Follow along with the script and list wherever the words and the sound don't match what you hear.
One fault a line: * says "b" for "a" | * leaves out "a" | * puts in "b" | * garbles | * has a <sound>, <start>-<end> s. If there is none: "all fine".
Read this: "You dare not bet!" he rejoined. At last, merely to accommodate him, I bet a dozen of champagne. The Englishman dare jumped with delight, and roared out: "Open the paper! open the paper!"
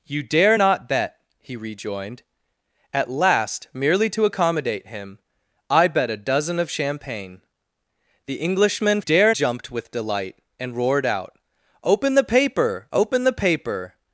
all fine